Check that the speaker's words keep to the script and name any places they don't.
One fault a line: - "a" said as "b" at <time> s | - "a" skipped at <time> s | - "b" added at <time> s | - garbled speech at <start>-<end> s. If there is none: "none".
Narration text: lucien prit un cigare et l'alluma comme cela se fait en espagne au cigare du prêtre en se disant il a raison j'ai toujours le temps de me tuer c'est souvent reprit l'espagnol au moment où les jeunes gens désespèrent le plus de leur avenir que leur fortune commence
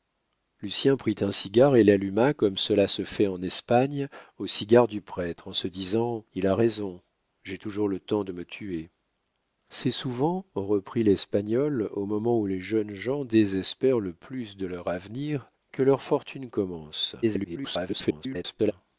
- garbled speech at 17.2-18.7 s